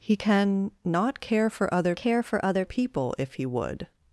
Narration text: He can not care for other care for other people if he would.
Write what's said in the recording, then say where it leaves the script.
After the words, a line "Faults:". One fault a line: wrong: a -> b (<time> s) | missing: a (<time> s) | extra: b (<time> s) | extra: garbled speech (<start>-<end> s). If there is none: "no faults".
He can not care for other care for other people if he would.
Faults:
no faults